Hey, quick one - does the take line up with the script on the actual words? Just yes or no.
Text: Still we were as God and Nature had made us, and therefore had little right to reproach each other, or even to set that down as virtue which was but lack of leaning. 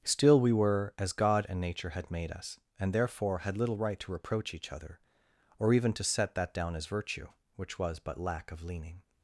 yes